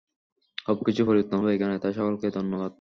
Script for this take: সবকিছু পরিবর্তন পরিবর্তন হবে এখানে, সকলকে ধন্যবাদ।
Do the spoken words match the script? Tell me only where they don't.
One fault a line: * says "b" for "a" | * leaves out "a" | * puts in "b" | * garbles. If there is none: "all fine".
* leaves out "পরিবর্তন"
* puts in "তাই"